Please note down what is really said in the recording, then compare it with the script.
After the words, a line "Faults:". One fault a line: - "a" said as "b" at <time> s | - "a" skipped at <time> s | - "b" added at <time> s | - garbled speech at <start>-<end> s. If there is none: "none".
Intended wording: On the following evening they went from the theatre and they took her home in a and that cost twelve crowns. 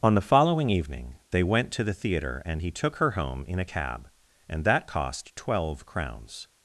On the following evening they went to the theatre and he took her home in a cab, and that cost twelve crowns.
Faults:
- "from" said as "to" at 1.7 s
- "they" said as "he" at 2.6 s
- "cab" added at 3.6 s